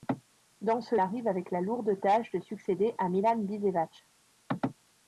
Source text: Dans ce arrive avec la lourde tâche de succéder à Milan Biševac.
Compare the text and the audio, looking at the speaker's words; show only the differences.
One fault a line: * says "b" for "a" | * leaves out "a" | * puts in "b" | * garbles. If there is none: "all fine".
all fine